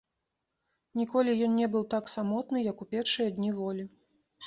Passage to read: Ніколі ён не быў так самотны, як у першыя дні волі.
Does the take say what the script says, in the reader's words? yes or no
yes